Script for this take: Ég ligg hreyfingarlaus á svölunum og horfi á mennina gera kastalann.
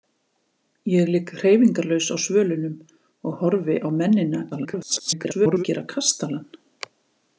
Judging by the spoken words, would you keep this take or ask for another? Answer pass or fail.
fail